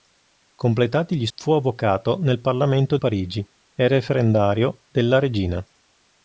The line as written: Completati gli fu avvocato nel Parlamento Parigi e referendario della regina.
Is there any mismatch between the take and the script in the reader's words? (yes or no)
no